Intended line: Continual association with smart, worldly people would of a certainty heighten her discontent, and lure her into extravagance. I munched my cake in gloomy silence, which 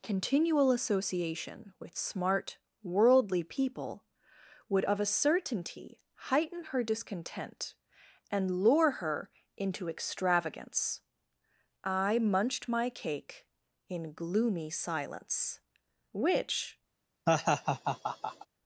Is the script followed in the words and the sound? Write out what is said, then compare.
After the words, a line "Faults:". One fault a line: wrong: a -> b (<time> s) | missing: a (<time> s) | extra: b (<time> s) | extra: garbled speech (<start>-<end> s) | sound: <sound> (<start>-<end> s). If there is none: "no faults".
Continual association with smart, worldly people would of a certainty heighten her discontent, and lure her into extravagance. I munched my cake in gloomy silence, which
Faults:
sound: laugh (17.3-18.5 s)